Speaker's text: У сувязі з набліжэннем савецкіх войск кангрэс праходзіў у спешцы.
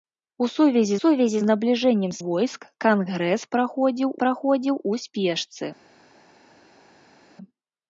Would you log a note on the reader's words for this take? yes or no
yes